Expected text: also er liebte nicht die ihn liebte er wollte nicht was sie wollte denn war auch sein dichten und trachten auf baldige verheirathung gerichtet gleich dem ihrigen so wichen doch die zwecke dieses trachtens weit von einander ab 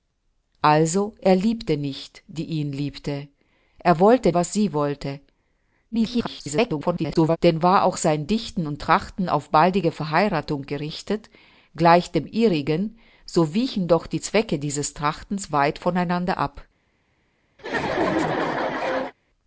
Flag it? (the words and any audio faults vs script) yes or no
yes